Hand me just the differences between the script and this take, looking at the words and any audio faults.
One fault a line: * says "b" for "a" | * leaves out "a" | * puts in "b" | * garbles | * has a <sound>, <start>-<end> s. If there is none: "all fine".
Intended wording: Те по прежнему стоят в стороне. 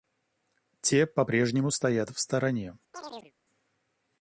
* has a chirp, 2.9-3.3 s